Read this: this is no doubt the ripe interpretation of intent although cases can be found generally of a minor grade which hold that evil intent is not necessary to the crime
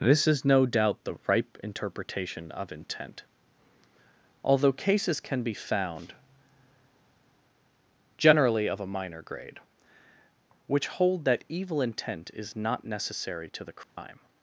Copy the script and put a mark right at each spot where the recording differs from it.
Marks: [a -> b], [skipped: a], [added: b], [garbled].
this is no doubt the ripe interpretation of intent although cases can be found generally of a minor grade which hold that evil intent is not necessary to the crime